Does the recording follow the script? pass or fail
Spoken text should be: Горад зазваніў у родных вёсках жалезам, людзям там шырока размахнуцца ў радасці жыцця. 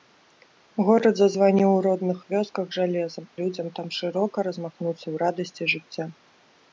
pass